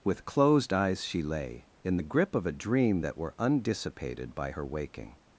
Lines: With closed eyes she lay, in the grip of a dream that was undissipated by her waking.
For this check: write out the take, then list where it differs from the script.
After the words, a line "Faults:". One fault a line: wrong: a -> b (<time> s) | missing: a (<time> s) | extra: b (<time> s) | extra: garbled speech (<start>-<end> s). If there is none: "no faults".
With closed eyes she lay, in the grip of a dream that were undissipated by her waking.
Faults:
wrong: was -> were (3.2 s)